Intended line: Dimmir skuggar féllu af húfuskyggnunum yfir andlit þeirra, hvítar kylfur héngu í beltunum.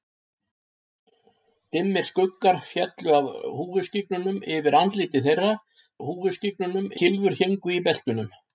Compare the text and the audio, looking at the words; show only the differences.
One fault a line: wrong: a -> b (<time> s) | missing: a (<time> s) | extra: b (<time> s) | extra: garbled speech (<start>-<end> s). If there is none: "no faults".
wrong: hvítar -> húfuskyggnunum (6.1 s)